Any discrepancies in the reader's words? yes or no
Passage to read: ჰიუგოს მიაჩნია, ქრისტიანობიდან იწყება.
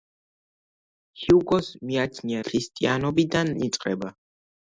no